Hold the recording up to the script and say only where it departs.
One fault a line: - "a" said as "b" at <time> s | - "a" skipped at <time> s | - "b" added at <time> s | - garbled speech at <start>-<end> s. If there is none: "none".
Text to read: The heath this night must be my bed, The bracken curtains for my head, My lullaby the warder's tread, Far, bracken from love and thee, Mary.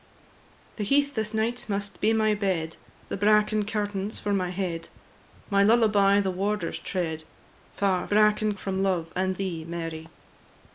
none